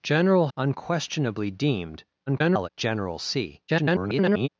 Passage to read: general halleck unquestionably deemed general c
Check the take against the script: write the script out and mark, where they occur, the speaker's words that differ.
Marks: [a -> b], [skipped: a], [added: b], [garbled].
general [skipped: halleck] unquestionably deemed [garbled] general c [garbled]